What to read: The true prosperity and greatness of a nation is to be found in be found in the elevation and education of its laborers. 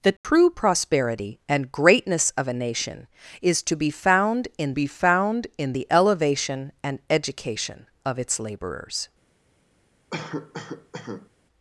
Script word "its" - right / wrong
right